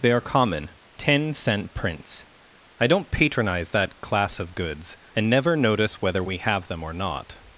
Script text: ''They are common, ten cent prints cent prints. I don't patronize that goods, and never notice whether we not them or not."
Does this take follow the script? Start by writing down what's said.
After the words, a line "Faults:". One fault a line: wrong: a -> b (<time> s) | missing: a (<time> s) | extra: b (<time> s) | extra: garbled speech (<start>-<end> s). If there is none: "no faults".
''They are common, ten cent prints. I don't patronize that class of goods, and never notice whether we have them or not."
Faults:
missing: cent prints (2.2 s)
extra: class of (4.0 s)
wrong: not -> have (6.4 s)